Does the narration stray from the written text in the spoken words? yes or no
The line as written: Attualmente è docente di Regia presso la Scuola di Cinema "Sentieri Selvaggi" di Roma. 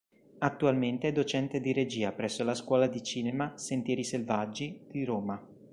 no